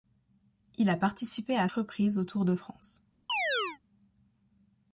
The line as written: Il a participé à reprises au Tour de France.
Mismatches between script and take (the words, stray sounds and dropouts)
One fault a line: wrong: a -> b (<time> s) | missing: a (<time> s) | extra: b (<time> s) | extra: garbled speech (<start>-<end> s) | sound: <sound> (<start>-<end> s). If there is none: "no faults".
sound: chirp (3.3-3.8 s)